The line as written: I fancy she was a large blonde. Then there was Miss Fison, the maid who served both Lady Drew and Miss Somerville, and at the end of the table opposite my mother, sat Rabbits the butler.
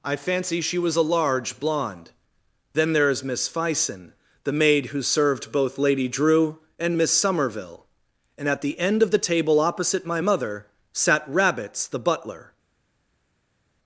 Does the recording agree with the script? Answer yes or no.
no